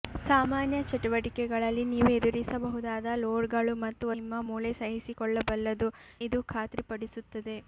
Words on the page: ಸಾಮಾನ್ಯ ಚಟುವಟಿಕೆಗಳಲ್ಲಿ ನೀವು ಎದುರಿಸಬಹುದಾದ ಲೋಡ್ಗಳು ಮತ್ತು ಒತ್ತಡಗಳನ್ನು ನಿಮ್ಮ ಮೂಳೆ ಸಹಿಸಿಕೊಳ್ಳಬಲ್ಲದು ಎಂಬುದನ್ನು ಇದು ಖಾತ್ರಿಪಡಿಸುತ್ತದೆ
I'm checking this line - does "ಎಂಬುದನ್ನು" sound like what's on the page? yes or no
no